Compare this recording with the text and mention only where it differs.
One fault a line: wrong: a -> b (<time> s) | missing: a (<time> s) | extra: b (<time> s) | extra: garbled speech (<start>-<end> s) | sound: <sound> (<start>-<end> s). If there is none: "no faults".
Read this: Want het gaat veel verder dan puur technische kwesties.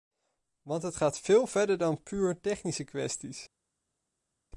no faults